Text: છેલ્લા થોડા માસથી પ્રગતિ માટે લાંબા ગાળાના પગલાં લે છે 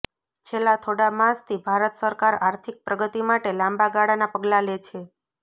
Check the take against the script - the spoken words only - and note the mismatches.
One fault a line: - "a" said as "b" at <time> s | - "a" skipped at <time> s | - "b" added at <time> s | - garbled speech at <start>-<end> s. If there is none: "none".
- "ભારત સરકાર આર્થિક" added at 1.7 s